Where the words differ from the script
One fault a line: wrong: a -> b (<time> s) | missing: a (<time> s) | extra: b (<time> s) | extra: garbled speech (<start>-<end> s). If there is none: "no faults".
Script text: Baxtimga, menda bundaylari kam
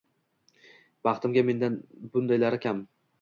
no faults